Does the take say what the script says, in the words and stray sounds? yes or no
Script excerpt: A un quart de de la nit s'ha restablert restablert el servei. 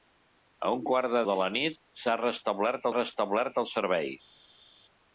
yes